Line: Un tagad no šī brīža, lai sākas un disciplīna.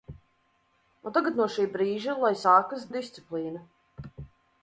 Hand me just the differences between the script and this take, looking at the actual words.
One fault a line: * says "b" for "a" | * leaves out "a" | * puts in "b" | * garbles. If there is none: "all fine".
all fine